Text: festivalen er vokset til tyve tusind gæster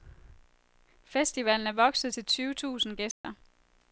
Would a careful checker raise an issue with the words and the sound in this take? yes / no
yes